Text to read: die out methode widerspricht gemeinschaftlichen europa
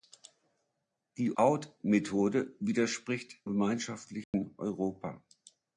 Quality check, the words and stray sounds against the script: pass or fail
fail